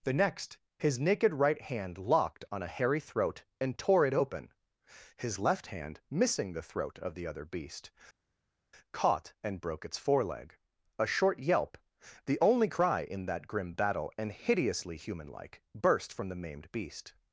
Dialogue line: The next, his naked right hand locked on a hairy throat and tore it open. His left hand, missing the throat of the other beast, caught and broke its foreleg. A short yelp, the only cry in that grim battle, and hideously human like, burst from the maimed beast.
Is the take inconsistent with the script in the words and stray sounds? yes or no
no